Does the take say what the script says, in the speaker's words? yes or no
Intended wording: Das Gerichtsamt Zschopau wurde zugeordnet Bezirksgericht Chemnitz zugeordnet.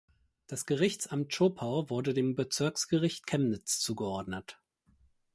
no